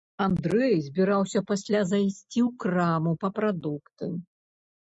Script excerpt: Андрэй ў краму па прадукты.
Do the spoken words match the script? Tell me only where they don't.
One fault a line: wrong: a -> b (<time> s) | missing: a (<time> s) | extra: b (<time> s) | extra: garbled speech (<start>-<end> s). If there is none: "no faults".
extra: збіраўся пасля зайсці (0.8 s)